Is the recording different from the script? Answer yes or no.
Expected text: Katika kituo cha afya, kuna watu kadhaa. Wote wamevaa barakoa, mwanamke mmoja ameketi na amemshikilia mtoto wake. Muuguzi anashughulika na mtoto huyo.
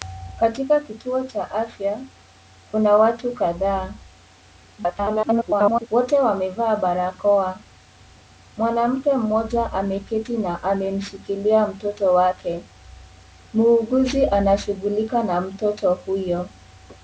yes